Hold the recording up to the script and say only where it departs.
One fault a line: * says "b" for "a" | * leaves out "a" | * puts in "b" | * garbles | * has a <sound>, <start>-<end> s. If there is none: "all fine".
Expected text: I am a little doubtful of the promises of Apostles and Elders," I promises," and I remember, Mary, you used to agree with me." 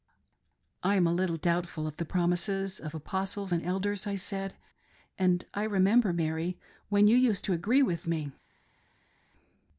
* says "said" for "promises"
* puts in "when"